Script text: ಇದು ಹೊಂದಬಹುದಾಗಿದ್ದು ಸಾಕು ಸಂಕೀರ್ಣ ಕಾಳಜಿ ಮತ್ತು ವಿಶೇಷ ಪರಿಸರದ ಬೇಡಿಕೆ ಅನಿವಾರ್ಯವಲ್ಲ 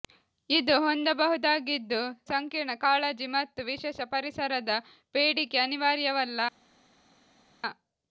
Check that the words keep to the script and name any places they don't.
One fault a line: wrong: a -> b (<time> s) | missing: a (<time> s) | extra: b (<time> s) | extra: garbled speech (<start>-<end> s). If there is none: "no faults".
missing: ಸಾಕು (2.0 s)